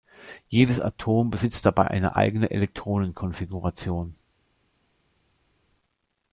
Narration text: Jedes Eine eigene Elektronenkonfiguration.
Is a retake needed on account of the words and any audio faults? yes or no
yes